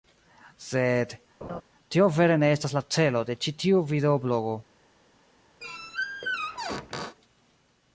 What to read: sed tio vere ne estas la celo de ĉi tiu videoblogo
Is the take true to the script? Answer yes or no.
yes